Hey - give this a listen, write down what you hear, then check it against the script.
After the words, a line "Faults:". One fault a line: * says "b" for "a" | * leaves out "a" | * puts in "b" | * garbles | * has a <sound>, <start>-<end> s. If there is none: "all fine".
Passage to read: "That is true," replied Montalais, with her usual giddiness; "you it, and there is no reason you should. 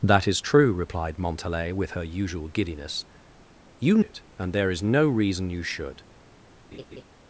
"That is true," replied Montalais, with her usual giddiness; "you it, and there is no reason you should.
Faults:
* has a laugh, 6.7-7.0 s